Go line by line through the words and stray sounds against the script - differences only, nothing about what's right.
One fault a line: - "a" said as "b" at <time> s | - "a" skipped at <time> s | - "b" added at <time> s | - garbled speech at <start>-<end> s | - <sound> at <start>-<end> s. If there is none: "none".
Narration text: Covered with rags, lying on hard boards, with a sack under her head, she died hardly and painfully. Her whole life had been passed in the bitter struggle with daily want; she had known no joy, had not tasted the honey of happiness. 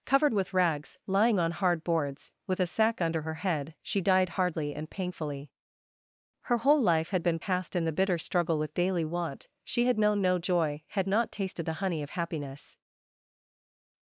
none